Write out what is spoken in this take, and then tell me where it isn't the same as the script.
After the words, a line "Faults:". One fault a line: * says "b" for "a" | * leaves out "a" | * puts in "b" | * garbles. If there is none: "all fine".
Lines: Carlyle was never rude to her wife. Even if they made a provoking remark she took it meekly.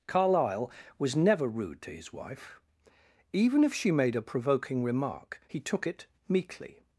Carlyle was never rude to his wife. Even if she made a provoking remark he took it meekly.
Faults:
* says "his" for "her"
* says "she" for "they"
* says "he" for "she"